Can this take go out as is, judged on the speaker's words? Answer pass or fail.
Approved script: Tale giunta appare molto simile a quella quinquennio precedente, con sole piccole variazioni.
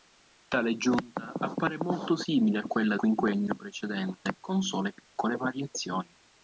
pass